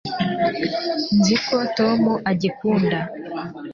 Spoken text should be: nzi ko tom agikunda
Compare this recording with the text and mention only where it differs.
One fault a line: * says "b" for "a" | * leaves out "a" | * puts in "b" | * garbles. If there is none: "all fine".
all fine